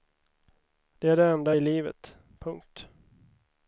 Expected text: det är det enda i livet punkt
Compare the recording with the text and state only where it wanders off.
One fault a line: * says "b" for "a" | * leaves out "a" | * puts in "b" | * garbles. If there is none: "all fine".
all fine